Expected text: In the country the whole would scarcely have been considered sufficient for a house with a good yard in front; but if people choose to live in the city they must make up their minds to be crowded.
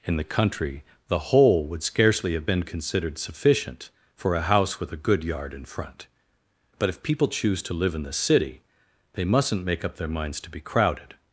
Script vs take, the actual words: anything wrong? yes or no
yes